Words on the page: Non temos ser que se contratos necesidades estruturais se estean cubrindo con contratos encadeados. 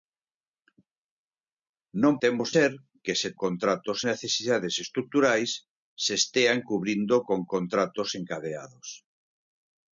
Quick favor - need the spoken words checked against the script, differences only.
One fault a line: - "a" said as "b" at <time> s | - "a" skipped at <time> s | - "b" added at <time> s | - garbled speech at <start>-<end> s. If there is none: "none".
none